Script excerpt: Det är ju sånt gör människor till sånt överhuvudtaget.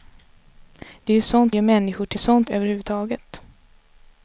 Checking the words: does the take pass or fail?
pass